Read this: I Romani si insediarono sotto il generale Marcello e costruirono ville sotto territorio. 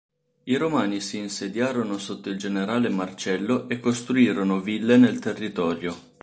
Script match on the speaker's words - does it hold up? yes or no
no